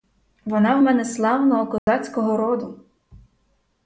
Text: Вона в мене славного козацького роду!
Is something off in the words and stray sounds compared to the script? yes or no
yes